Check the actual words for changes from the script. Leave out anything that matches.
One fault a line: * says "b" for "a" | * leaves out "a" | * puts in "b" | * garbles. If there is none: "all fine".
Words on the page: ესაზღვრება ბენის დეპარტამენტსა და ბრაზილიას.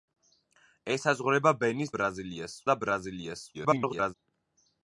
* says "ბრაზილიას" for "დეპარტამენტსა"
* garbles